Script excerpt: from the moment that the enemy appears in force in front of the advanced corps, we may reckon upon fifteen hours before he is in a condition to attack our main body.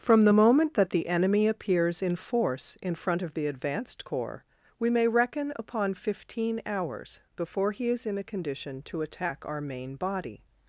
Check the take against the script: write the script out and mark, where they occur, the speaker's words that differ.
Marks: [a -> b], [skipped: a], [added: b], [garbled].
from the moment that the enemy appears in force in front of the advanced corps, we may reckon upon fifteen hours before he is in a condition to attack our main body.